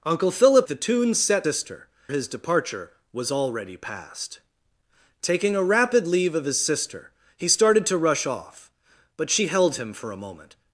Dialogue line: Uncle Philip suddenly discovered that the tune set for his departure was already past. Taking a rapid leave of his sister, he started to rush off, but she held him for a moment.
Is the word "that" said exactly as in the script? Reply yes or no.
no